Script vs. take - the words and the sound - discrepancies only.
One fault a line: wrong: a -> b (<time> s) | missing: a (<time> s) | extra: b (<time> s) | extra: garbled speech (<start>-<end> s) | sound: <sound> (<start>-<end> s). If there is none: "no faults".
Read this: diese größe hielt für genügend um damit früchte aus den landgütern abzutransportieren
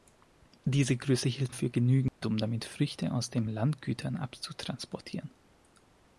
sound: dropout (2.1-2.2 s)